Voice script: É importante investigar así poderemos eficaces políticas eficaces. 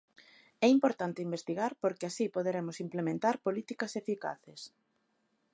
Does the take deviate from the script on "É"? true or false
false